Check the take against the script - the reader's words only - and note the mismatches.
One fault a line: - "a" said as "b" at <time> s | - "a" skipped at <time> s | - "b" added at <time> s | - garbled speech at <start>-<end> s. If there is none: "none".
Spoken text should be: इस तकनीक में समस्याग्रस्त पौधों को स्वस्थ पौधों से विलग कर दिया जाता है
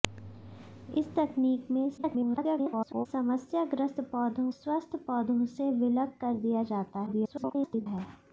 - garbled speech at 2.0-3.1 s
- "को" skipped at 4.5 s
- garbled speech at 7.1-7.9 s